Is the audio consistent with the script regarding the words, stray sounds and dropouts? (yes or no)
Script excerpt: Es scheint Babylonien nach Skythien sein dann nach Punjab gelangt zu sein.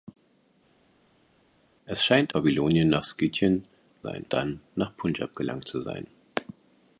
yes